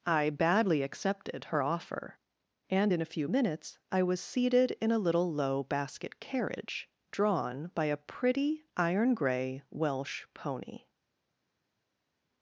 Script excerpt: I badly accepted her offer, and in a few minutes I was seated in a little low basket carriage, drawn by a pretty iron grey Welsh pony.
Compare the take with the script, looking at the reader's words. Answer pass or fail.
pass